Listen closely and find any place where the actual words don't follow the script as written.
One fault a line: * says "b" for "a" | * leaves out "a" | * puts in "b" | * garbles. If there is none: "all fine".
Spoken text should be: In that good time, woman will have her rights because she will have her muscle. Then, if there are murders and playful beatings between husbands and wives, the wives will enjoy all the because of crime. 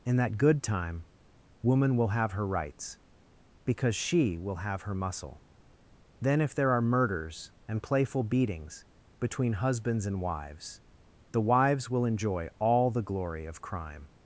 * says "glory" for "because"